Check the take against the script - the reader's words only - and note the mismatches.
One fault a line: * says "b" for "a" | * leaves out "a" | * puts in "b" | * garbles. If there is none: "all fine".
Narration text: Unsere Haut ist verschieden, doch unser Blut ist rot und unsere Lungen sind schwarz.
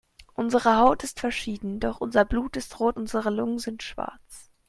* leaves out "und"